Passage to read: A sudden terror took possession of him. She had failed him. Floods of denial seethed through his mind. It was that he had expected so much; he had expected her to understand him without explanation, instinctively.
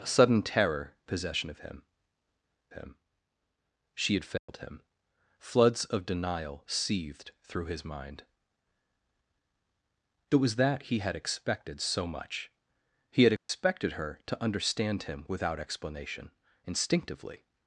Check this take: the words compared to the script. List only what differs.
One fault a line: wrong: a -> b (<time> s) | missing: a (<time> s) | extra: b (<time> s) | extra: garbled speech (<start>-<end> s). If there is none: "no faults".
missing: took (0.9 s)
extra: him (2.7 s)